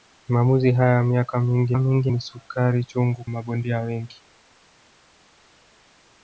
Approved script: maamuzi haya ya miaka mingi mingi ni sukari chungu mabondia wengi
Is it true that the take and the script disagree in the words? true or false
false